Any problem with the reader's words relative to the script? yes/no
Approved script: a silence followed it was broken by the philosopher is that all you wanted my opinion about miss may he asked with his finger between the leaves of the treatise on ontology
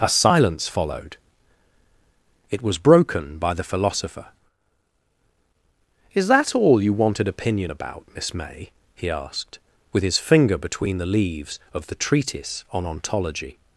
yes